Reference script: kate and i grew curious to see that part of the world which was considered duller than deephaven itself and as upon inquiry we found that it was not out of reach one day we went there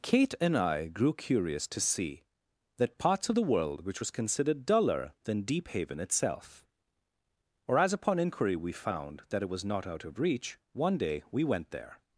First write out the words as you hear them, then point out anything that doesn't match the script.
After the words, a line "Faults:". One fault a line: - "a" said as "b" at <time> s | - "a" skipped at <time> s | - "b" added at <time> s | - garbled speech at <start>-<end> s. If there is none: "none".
kate and i grew curious to see that parts of the world which was considered duller than deephaven itself or as upon inquiry we found that it was not out of reach one day we went there
Faults:
- "part" said as "parts" at 3.0 s
- "and" said as "or" at 7.7 s